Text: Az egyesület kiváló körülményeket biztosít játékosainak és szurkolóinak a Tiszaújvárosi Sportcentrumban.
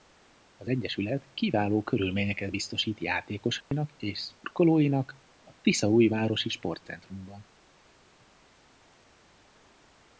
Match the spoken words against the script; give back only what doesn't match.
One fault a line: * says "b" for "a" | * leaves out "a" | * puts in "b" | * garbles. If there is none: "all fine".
all fine